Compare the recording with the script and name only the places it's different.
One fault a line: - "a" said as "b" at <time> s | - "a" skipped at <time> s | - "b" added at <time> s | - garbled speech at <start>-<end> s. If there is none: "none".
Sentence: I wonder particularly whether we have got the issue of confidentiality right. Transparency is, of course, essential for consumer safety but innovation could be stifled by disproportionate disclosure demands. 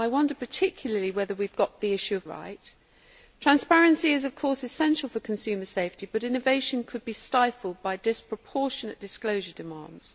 - "confidentiality" skipped at 2.2 s